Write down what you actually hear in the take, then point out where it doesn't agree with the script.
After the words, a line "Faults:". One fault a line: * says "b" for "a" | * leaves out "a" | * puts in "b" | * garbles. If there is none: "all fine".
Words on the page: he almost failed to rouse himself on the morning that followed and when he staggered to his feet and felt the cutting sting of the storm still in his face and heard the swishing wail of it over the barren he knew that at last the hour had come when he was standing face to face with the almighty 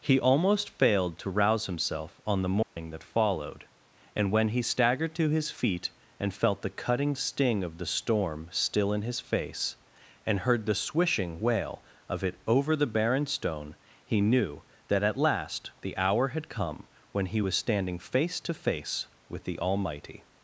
he almost failed to rouse himself on the morning that followed and when he staggered to his feet and felt the cutting sting of the storm still in his face and heard the swishing wail of it over the barren stone he knew that at last the hour had come when he was standing face to face with the almighty
Faults:
* puts in "stone"